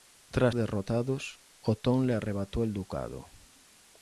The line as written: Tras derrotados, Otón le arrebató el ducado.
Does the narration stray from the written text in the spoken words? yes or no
no